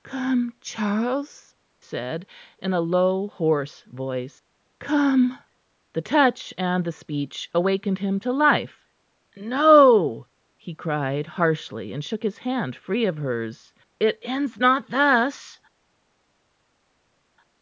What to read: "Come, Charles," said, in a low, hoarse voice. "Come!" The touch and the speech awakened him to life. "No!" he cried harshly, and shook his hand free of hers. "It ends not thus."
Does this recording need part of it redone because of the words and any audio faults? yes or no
no